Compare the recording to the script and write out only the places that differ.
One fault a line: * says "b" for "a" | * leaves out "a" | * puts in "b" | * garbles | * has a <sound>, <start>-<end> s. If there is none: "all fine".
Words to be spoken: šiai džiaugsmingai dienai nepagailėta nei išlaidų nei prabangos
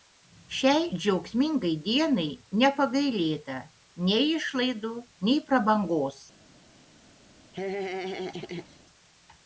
* has a laugh, 7.5-8.8 s